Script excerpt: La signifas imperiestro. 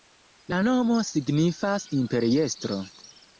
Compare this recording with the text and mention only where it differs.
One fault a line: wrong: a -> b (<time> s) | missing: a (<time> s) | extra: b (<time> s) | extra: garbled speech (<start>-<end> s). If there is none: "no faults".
extra: nomo (0.7 s)